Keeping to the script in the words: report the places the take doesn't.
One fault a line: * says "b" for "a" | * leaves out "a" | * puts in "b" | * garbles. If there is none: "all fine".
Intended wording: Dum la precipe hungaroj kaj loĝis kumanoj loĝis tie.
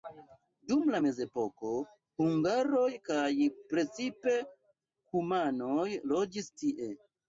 * says "mezepoko" for "precipe"
* says "precipe" for "loĝis"